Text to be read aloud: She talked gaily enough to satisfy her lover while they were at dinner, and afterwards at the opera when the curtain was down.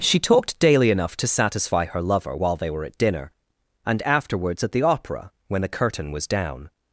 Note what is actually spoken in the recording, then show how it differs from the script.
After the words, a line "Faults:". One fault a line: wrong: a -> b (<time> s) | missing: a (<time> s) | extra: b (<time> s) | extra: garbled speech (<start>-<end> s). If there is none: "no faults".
She talked daily enough to satisfy her lover while they were at dinner, and afterwards at the opera when the curtain was down.
Faults:
wrong: gaily -> daily (0.6 s)